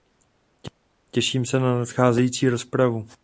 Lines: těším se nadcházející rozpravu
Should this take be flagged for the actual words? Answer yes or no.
yes